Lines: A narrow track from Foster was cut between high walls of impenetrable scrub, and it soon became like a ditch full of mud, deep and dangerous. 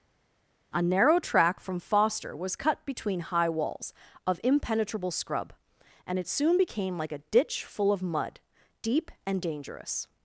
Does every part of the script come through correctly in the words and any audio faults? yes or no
yes